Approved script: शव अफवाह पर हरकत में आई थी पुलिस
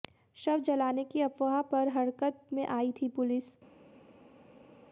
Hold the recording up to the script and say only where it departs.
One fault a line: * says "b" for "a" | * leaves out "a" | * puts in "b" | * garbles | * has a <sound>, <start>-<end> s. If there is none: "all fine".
* puts in "जलाने की"